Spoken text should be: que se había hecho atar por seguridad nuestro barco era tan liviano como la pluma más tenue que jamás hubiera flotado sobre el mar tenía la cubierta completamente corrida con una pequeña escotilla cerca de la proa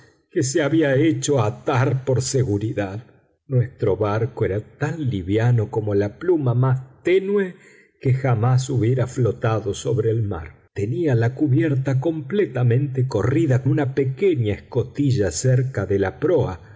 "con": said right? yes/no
no